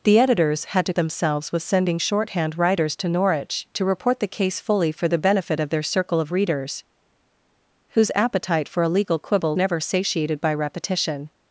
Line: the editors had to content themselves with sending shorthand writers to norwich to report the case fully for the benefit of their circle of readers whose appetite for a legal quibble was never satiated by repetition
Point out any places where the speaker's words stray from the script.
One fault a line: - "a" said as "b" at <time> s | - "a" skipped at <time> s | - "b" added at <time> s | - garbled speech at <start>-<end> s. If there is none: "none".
- "content" skipped at 0.9 s
- "was" skipped at 9.6 s